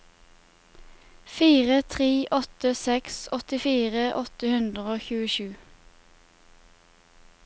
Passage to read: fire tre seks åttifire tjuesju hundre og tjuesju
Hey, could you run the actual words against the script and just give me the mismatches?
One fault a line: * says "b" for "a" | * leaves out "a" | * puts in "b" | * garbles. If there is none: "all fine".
* puts in "åtte"
* says "åtte" for "tjuesju"